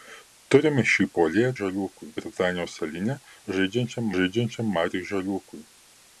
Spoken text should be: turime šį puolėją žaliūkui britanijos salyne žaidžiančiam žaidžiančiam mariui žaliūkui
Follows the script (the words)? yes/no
yes